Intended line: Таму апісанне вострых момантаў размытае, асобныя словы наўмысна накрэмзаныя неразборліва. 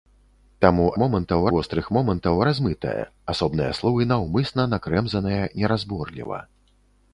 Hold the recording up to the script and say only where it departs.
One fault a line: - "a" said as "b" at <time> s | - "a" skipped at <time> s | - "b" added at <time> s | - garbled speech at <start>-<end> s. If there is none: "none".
- "апісанне" said as "момантаў" at 1.0 s